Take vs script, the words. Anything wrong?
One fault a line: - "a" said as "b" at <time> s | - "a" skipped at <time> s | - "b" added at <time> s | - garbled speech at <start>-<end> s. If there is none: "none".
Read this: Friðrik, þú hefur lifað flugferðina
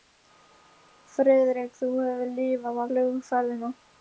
none